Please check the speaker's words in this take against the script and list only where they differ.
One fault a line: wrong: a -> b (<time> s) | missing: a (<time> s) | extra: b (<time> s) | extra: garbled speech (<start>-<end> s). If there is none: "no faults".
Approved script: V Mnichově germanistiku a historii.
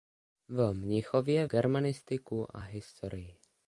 no faults